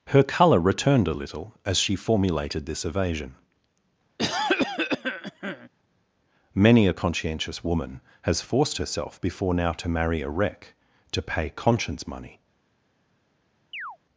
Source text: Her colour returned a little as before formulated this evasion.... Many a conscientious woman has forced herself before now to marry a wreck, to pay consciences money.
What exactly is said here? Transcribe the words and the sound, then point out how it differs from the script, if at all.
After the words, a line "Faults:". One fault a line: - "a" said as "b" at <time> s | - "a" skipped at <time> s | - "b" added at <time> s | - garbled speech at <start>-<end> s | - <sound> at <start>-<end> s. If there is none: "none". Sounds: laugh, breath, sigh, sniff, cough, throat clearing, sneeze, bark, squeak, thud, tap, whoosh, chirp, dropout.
Her colour returned a little as she formulated this evasion.... Many a conscientious woman has forced herself before now to marry a wreck, to pay conscience money.
Faults:
- "before" said as "she" at 1.8 s
- cough at 4.2-5.7 s
- "consciences" said as "conscience" at 11.5 s
- chirp at 13.7-14.0 s